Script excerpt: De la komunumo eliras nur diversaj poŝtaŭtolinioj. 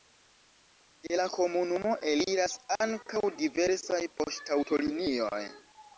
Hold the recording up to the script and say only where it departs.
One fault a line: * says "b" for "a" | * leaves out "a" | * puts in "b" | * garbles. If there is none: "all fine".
* says "ankaŭ" for "nur"